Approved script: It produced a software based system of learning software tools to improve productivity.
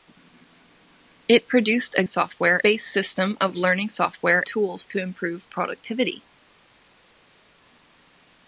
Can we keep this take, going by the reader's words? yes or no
yes